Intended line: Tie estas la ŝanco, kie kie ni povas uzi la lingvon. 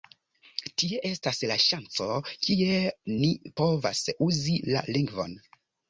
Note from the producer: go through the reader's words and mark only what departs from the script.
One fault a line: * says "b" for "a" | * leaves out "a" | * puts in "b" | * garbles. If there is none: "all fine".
* leaves out "kie"